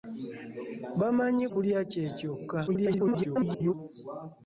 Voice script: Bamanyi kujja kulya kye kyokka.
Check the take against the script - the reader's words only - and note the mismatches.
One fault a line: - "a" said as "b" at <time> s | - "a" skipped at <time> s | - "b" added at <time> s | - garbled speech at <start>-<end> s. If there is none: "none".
- "kujja" skipped at 1.4 s
- garbled speech at 2.7-3.7 s